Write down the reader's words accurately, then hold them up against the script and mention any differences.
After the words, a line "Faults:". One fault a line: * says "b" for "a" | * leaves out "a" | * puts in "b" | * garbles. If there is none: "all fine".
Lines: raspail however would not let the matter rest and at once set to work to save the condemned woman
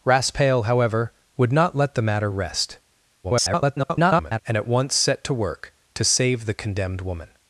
raspail however would not let the matter rest [garbled] and at once set to work to save the condemned woman
Faults:
* garbles